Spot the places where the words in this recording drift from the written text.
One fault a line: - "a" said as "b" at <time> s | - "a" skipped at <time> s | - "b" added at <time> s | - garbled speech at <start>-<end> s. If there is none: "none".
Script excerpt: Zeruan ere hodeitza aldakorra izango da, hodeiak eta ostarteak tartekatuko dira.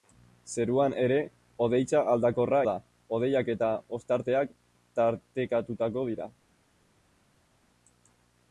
- "izango" skipped at 2.6 s